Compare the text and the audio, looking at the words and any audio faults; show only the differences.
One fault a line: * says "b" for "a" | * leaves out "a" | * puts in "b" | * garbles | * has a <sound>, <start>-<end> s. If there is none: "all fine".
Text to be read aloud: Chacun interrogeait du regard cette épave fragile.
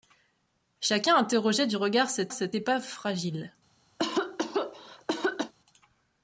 * puts in "cette"
* has a cough, 4.0-5.5 s